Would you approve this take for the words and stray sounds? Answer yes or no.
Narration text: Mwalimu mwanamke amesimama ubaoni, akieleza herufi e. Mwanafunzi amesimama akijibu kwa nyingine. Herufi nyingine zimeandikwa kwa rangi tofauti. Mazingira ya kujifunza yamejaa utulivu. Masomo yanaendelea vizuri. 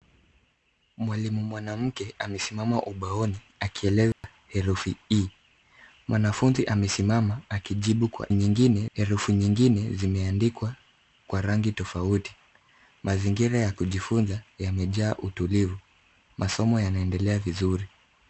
no